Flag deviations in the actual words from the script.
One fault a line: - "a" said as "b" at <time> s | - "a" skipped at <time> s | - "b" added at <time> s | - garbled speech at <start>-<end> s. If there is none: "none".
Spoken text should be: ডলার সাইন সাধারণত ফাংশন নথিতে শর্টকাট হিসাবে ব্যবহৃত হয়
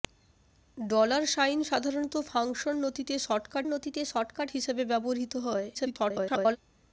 - "নথিতে শর্টকাট" added at 3.7 s
- garbled speech at 5.7-6.6 s